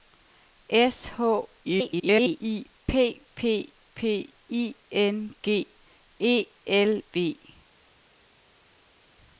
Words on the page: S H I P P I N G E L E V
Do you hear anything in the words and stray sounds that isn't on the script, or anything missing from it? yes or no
yes